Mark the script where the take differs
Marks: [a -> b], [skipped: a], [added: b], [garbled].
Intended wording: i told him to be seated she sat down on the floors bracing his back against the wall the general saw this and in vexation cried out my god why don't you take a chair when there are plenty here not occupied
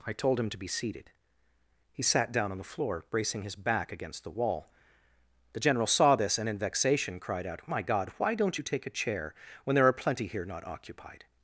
i told him to be seated [she -> he] sat down on the [floors -> floor] bracing his back against the wall the general saw this and in vexation cried out my god why don't you take a chair when there are plenty here not occupied